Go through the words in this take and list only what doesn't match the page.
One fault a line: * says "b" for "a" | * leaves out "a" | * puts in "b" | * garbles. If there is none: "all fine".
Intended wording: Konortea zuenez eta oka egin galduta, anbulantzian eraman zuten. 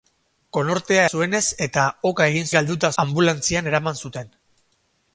all fine